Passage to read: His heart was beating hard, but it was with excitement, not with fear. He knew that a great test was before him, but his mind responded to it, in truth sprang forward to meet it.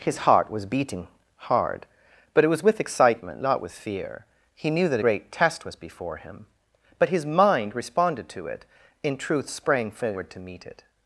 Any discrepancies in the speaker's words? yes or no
yes